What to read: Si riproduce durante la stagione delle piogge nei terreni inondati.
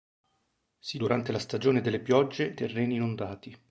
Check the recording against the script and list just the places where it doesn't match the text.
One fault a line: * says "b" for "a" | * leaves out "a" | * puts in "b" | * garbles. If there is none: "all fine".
* leaves out "riproduce"
* leaves out "nei"